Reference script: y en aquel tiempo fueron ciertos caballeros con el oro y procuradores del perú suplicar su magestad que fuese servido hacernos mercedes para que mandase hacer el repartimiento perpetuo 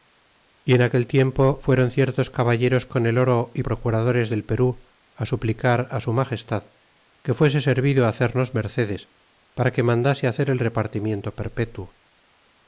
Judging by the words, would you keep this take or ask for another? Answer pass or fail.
pass